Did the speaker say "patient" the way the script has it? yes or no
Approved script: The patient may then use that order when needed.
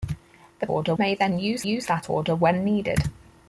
no